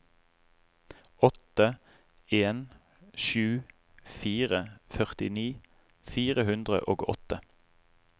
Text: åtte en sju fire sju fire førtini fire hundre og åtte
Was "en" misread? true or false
false